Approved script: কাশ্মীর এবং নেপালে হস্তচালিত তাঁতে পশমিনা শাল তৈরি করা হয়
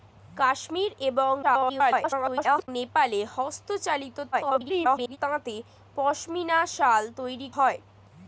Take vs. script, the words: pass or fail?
fail